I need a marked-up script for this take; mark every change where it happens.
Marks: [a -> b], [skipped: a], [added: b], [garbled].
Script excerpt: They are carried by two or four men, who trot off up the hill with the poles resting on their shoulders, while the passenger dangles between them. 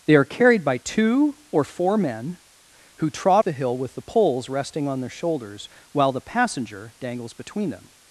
They are carried by two or four men, who trot [skipped: off up] the hill with the poles resting on their shoulders, while the passenger dangles between them.